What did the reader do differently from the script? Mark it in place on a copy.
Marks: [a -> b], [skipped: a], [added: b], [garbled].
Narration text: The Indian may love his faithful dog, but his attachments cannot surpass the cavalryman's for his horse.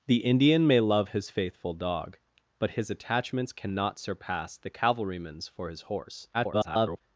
The Indian may love his faithful dog, but his attachments cannot surpass the cavalryman's for his horse. [garbled]